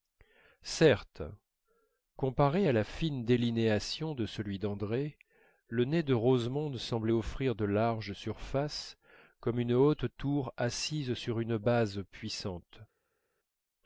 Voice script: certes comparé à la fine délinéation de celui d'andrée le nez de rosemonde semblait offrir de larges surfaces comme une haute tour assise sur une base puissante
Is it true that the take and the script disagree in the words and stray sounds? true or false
false